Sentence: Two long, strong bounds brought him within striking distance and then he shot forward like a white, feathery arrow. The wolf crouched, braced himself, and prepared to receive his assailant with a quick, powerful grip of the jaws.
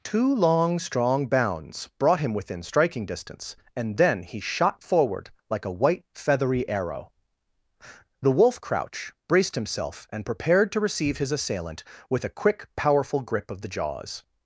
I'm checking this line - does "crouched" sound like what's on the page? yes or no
no